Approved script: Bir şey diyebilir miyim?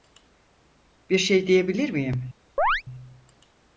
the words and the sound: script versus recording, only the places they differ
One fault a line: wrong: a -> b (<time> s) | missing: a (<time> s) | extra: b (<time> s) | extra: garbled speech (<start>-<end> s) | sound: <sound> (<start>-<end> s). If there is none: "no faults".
sound: chirp (2.6-2.8 s)